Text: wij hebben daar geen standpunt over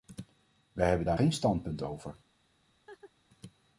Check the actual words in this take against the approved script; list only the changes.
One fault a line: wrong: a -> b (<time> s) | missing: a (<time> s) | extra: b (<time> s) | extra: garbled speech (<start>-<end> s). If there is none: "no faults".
no faults